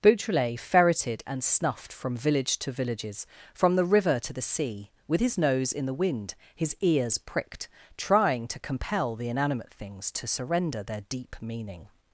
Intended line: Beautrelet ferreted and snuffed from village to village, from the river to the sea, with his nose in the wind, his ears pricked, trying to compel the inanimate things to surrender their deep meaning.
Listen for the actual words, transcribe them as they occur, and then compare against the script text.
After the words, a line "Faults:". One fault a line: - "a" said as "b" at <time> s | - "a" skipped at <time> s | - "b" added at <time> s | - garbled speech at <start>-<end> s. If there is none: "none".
Beautrelet ferreted and snuffed from village to villages, from the river to the sea, with his nose in the wind, his ears pricked, trying to compel the inanimate things to surrender their deep meaning.
Faults:
- "village" said as "villages" at 2.7 s